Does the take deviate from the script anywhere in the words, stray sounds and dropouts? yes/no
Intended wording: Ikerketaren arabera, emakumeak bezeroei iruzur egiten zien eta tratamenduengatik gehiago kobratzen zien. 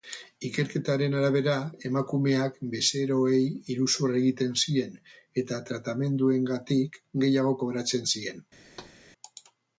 yes